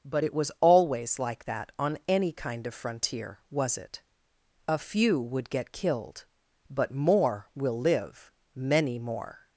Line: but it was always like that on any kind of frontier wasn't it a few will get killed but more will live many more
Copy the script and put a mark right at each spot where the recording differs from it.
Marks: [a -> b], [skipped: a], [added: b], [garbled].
but it was always like that on any kind of frontier [wasn't -> was] it a few [will -> would] get killed but more will live many more